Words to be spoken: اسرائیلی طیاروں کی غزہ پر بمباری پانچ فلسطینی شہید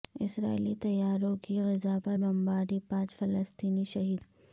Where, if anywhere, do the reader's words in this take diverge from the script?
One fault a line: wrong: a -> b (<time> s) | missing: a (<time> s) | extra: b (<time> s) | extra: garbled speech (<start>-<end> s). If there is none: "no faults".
no faults